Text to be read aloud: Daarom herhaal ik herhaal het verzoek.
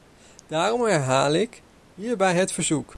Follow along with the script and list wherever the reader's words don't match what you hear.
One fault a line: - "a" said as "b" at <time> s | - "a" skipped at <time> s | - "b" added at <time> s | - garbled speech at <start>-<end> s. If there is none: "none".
- "herhaal" said as "hierbij" at 1.9 s